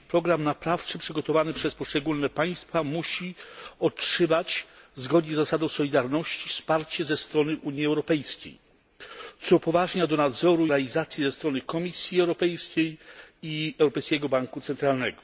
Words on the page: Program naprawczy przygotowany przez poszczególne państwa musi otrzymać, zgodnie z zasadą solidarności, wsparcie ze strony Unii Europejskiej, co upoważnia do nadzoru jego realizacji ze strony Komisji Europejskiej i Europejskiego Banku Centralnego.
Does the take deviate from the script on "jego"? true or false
true